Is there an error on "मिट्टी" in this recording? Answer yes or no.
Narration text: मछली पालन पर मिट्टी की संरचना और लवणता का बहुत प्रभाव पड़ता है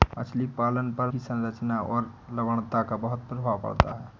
yes